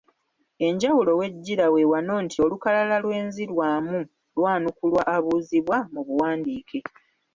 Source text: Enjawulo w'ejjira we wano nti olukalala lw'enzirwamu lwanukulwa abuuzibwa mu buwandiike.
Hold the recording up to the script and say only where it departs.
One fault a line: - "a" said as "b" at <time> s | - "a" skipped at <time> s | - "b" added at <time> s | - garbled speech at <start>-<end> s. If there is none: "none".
none